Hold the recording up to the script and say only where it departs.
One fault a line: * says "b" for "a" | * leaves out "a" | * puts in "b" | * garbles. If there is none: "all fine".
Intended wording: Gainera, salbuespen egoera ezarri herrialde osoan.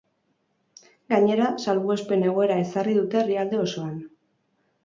* puts in "dute"